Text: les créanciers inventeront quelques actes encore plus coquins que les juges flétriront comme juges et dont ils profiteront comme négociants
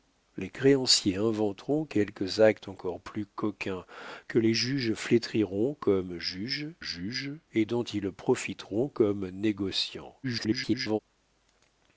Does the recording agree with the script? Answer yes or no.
no